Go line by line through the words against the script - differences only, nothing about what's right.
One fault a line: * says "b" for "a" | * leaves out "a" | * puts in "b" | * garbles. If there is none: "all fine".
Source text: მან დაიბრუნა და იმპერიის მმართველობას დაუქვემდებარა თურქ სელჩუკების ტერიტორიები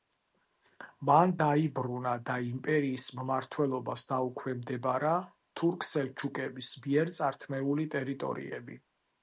* puts in "მიერ წართმეული"